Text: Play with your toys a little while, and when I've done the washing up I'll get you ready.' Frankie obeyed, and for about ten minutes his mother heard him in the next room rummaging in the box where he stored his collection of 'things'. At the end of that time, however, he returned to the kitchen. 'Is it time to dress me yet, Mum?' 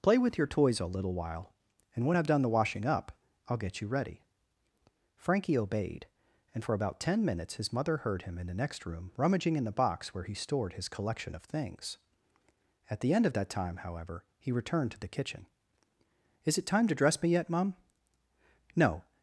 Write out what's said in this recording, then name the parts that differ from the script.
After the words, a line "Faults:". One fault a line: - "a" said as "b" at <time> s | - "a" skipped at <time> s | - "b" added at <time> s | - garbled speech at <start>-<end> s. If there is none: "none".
Play with your toys a little while, and when I've done the washing up I'll get you ready.' Frankie obeyed, and for about ten minutes his mother heard him in the next room rummaging in the box where he stored his collection of 'things'. At the end of that time, however, he returned to the kitchen. 'Is it time to dress me yet, Mum?' 'No
Faults:
- "No" added at 18.8 s